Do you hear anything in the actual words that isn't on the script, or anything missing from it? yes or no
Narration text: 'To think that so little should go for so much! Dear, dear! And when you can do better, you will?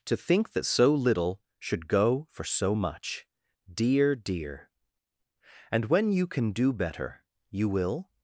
no